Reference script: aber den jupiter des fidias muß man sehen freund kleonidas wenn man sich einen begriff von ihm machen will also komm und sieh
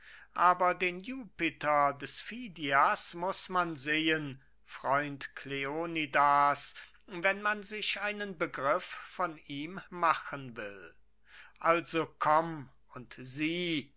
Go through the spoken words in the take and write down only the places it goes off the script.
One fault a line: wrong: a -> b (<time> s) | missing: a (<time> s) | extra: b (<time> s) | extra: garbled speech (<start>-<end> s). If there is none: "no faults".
no faults